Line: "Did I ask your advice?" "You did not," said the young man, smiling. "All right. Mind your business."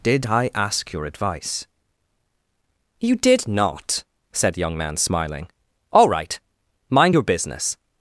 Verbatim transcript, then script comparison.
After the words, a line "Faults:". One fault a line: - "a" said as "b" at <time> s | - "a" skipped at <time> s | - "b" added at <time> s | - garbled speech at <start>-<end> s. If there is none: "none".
"Did I ask your advice?" "You did not," said young man, smiling. "All right. Mind your business."
Faults:
- "the" skipped at 4.6 s